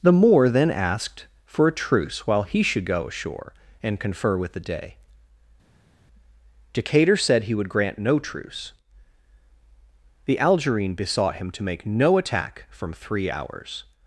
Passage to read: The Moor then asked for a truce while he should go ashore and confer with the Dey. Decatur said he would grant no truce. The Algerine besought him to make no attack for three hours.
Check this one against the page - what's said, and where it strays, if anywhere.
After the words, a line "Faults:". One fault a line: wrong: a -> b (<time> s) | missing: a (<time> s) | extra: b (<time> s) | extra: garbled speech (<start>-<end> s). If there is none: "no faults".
The Moor then asked for a truce while he should go ashore and confer with the Dey. Decatur said he would grant no truce. The Algerine besought him to make no attack from three hours.
Faults:
wrong: for -> from (12.7 s)